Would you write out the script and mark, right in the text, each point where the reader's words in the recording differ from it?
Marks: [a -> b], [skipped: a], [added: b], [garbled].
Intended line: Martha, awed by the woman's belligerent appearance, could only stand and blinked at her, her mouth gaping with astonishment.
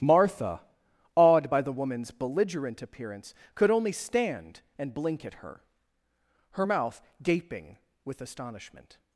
Martha, awed by the woman's belligerent appearance, could only stand and [blinked -> blink] at her, her mouth gaping with astonishment.